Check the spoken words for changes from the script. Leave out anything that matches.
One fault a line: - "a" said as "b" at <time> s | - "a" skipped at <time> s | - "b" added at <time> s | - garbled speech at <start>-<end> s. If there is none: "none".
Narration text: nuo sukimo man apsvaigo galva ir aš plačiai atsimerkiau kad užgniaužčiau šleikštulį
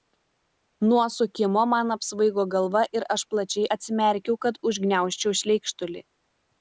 none